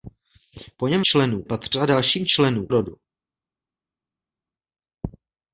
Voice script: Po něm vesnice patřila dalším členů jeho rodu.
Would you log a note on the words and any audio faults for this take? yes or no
yes